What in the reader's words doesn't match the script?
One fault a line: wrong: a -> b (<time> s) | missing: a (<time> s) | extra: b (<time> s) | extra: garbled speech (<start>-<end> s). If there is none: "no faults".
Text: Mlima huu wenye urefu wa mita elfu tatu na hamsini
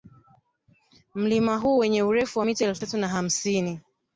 no faults